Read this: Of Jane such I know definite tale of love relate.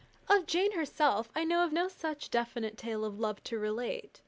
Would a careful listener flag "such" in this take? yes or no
yes